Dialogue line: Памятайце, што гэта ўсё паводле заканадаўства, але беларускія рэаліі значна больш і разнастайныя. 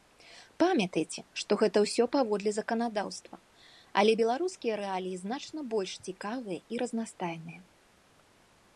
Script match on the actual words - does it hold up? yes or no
no